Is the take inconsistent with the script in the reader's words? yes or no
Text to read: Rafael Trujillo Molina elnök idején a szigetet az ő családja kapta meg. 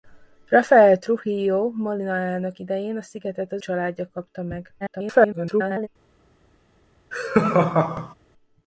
yes